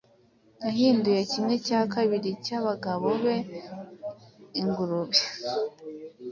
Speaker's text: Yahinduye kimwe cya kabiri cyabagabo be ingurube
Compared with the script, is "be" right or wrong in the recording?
right